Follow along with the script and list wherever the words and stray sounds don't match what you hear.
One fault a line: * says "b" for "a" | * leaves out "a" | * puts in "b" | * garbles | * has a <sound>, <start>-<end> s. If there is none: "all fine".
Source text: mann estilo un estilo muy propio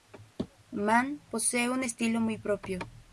* says "posee" for "estilo"